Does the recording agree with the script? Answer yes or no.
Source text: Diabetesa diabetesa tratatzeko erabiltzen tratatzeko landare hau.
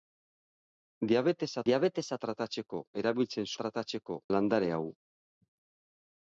yes